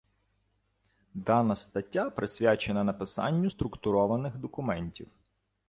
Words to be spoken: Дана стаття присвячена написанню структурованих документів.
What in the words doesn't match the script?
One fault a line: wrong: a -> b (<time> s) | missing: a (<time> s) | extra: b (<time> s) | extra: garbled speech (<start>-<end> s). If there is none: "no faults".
no faults